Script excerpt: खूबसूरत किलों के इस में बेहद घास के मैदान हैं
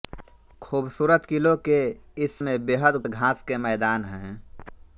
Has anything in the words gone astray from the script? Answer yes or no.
no